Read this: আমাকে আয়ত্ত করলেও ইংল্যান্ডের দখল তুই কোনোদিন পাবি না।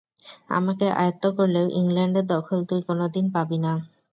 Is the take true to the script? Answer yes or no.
yes